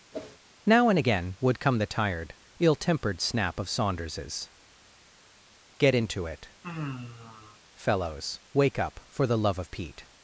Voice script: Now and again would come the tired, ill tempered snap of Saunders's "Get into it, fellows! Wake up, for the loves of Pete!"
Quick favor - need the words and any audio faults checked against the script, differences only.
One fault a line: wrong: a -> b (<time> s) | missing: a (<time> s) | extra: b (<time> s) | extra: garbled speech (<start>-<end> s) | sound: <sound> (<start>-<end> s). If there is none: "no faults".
sound: whoosh (0.1-0.4 s)
sound: sigh (6.6-7.6 s)
wrong: loves -> love (9.4 s)